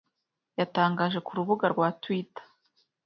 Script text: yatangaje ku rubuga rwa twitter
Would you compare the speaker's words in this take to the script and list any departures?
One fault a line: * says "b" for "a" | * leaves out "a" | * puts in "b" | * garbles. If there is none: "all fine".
all fine